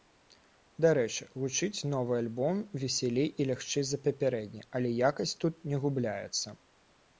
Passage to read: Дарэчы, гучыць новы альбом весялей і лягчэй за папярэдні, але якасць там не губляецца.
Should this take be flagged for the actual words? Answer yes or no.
yes